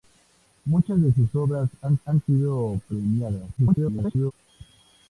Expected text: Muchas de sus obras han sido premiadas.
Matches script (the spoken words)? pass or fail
fail